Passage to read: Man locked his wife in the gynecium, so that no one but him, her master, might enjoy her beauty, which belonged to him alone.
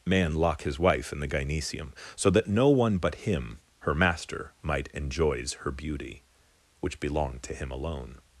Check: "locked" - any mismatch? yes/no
yes